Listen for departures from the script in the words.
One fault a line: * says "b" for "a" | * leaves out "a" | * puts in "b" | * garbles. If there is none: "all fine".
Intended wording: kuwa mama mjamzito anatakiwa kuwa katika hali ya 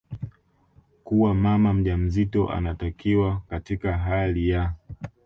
* leaves out "kuwa"